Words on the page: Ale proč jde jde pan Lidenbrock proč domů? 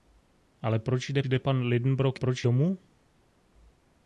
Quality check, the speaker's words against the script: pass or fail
pass